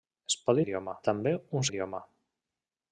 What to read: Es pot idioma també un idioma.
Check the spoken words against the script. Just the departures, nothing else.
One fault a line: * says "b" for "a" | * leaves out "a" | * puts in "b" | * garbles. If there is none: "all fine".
all fine